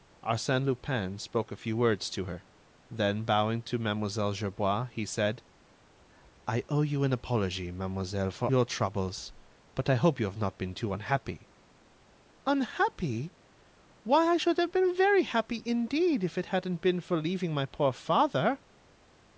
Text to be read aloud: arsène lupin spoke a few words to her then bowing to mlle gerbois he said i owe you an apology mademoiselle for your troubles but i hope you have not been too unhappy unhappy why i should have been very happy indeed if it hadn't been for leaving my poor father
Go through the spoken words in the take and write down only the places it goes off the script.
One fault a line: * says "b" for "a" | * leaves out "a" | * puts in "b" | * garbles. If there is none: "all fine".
all fine